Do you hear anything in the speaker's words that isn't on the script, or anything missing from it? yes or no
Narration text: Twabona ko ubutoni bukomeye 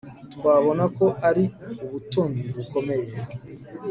yes